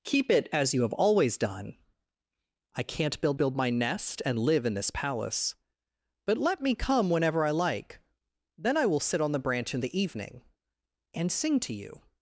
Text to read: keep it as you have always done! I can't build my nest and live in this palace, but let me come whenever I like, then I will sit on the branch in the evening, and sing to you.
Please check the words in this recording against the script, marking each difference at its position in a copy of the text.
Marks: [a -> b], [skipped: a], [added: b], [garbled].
keep it as you have always done! I can't build [added: build] my nest and live in this palace, but let me come whenever I like, then I will sit on the branch in the evening, and sing to you.